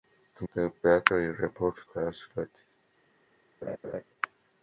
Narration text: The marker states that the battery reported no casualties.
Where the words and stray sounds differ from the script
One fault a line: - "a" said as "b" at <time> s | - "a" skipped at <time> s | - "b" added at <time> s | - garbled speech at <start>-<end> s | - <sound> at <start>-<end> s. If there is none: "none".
- "marker states that" skipped at 0.5 s
- "no" skipped at 1.8 s
- laugh at 3.6-4.0 s